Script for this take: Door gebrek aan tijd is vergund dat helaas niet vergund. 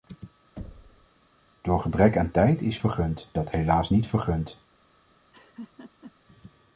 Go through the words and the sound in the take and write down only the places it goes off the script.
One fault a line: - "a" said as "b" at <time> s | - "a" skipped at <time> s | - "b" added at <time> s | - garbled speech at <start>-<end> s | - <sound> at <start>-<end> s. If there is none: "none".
- thud at 0.6-1.1 s
- laugh at 5.3-6.1 s